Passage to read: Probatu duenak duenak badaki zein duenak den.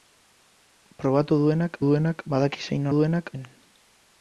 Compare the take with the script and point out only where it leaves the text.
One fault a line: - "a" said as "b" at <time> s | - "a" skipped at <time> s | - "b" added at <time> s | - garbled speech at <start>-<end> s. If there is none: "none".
none